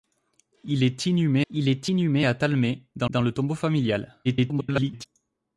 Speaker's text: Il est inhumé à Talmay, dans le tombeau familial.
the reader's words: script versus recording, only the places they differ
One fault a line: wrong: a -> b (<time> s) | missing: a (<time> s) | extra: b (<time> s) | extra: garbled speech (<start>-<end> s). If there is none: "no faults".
extra: il est inhumé (1.5 s)
extra: dans (3.1 s)
extra: garbled speech (4.2-5.1 s)